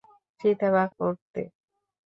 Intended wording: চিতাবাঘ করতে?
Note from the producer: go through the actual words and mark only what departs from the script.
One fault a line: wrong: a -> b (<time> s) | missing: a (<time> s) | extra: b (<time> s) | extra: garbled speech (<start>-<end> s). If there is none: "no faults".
no faults